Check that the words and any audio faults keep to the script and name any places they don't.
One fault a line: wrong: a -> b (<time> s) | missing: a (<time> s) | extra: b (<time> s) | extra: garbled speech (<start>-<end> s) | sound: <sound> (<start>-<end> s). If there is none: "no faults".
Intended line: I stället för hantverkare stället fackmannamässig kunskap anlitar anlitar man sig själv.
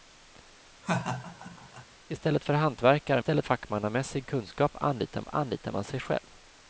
sound: laugh (0.8-1.9 s)